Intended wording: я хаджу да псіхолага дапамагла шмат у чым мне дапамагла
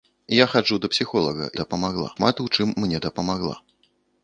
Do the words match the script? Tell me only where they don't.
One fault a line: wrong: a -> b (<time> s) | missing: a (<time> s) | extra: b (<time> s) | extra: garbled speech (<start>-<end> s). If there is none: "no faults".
no faults